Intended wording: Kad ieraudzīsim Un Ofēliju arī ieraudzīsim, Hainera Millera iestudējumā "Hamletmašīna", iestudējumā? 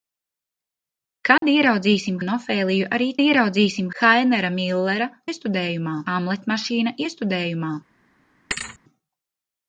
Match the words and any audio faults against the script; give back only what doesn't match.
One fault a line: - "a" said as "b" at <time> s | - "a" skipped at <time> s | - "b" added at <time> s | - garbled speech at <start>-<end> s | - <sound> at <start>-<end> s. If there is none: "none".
- dropout at 1.4-1.4 s
- thud at 8.5-8.8 s